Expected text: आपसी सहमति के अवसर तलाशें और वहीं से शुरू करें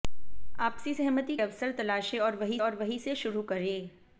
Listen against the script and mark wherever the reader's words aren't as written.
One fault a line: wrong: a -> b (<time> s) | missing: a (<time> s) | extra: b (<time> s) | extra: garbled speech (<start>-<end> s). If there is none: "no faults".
missing: के (1.4 s)
extra: और वहीं (2.6 s)